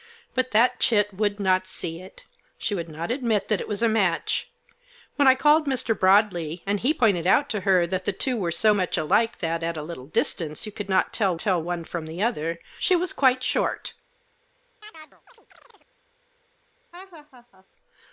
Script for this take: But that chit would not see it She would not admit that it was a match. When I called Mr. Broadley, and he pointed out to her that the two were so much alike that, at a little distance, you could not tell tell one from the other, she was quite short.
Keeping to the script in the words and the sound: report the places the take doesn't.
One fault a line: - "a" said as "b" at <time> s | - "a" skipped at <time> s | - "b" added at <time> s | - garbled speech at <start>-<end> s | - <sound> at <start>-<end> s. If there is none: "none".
- chirp at 14.8-15.9 s
- laugh at 16.9-17.7 s